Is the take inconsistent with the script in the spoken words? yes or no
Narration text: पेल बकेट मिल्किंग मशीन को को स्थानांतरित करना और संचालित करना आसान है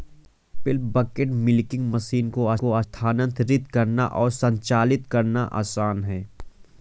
no